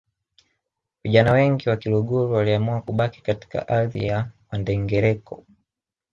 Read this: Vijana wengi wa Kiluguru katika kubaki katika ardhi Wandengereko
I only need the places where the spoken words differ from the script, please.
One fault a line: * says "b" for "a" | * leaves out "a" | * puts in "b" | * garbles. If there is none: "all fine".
* says "waliamua" for "katika"
* puts in "ya"